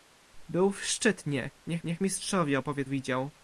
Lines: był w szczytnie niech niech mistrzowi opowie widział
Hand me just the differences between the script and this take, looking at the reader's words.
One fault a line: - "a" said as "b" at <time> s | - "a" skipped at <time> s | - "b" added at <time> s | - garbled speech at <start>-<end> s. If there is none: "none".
none